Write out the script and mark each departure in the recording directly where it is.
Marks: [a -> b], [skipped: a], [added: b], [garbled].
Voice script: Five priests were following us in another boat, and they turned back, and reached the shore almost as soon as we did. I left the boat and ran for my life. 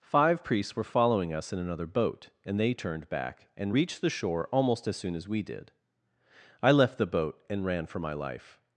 Five priests were following us in another boat, and they turned back, and reached the shore almost as soon as we did. I left the boat and ran for my life.